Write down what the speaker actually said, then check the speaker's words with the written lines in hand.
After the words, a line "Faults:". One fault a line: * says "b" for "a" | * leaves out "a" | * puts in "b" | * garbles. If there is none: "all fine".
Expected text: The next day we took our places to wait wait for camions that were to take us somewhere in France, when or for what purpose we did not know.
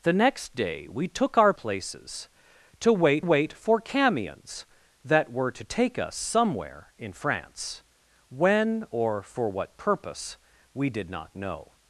The next day we took our places to wait wait for camions that were to take us somewhere in France, when or for what purpose we did not know.
Faults:
all fine